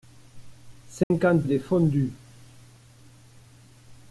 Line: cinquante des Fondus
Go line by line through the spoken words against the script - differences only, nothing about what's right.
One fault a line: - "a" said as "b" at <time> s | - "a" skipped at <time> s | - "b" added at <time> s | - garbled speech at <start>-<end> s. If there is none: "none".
none